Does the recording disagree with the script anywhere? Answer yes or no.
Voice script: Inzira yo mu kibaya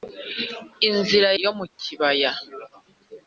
no